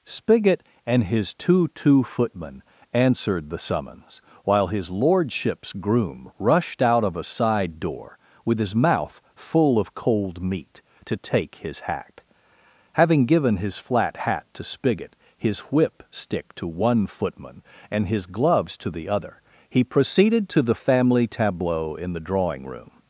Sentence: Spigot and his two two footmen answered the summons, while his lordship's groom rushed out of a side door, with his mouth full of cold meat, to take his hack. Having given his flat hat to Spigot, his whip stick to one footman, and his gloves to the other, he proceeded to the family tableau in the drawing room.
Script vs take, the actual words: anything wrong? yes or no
no